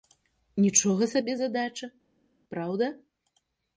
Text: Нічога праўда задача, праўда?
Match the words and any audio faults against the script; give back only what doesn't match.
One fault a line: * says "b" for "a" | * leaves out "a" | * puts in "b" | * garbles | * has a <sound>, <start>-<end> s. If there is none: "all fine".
* says "сабе" for "праўда"